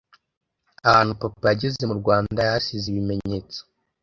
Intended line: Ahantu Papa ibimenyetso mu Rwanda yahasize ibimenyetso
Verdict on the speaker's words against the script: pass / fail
fail